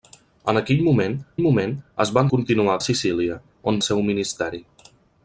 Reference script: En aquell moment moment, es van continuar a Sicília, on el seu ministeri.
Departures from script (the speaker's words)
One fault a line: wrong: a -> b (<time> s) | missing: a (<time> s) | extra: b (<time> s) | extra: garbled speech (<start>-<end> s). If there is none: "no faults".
no faults